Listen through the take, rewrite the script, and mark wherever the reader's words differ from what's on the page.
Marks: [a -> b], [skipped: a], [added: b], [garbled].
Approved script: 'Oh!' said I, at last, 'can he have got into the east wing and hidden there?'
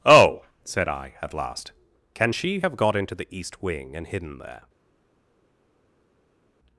'Oh!' said I, at last, 'can [he -> she] have got into the east wing and hidden there?'